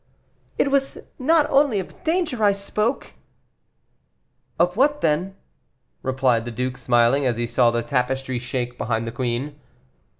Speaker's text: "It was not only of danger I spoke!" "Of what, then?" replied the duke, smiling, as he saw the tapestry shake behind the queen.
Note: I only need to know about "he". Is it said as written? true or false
true